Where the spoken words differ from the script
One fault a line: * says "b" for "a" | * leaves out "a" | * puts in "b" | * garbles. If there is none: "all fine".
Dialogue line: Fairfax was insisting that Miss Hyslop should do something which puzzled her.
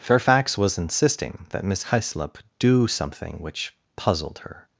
* leaves out "should"